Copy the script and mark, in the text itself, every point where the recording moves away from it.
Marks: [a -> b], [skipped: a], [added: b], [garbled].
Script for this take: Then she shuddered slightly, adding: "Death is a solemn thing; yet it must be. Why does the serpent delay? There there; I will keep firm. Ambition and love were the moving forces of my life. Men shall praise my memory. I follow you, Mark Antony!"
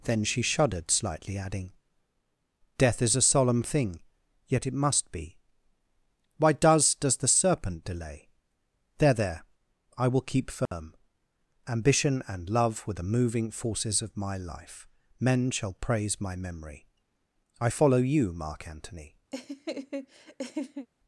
Then she shuddered slightly, adding: "Death is a solemn thing; yet it must be. Why does [added: does] the serpent delay? There there; I will keep firm. Ambition and love were the moving forces of my life. Men shall praise my memory. I follow you, Mark Antony!"